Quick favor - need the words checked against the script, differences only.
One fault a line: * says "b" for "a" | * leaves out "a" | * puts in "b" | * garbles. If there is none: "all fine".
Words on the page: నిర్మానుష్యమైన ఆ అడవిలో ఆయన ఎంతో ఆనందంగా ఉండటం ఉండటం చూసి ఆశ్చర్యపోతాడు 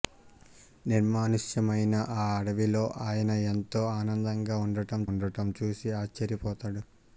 all fine